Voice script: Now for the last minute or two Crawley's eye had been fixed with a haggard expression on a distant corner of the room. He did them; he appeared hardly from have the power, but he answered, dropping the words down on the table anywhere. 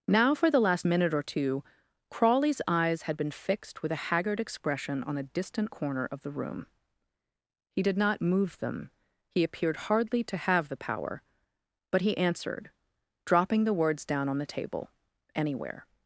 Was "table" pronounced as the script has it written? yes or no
yes